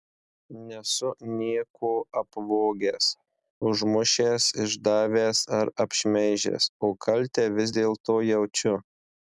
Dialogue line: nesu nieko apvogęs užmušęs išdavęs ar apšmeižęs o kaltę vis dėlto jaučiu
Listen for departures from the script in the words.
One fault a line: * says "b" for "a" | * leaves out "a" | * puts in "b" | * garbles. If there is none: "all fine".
all fine